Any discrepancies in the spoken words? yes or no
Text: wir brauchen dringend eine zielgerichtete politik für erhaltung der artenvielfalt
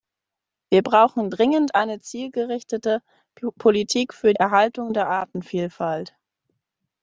no